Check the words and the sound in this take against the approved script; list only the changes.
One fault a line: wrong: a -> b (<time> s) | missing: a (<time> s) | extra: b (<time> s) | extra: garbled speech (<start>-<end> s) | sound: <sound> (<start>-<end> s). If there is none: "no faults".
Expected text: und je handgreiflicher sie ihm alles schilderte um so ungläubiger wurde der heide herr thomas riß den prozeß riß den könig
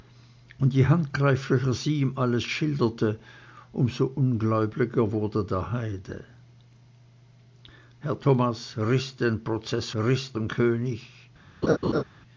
sound: laugh (11.6-12.0 s)